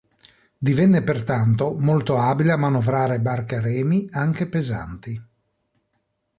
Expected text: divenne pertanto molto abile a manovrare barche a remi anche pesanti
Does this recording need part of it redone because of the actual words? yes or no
no